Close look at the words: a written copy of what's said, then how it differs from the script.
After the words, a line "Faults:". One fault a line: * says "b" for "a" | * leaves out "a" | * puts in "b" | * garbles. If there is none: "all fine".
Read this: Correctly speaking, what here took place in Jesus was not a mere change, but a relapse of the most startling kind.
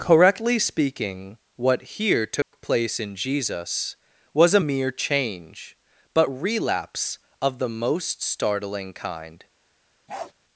Correctly speaking, what here took place in Jesus was a mere change, but relapse of the most startling kind.
Faults:
* leaves out "not"
* leaves out "a"